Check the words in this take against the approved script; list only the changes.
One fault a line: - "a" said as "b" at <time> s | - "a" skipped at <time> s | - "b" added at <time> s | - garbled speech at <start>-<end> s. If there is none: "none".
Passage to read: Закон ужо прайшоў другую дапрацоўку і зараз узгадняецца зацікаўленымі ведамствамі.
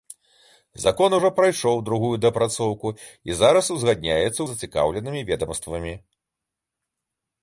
none